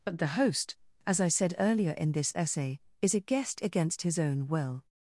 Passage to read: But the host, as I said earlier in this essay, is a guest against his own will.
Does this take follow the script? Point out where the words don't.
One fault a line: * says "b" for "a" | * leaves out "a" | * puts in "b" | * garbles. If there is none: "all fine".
all fine